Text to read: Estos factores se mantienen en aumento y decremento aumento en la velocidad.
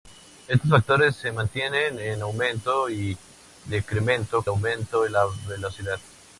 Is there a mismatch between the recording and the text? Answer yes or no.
no